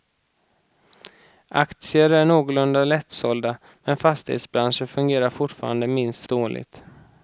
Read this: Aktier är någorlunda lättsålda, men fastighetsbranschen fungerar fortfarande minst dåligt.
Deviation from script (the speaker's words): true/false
false